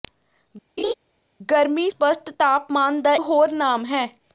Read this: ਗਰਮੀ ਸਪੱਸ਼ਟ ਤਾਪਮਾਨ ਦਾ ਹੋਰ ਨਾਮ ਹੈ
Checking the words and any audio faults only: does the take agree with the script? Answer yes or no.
no